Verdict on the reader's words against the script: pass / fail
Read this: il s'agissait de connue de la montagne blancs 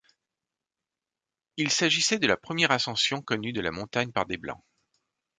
fail